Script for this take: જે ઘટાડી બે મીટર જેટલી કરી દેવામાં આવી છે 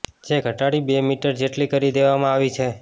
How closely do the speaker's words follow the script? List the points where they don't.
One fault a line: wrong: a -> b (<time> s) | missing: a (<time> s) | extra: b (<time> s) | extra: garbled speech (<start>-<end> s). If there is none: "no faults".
no faults